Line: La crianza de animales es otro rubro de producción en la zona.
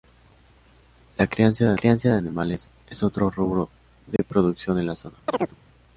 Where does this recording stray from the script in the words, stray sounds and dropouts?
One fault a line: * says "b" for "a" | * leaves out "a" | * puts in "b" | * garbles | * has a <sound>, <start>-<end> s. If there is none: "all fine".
* puts in "crianza de"
* has a dropout, 4.2-4.2 s
* has a chirp, 5.3-5.6 s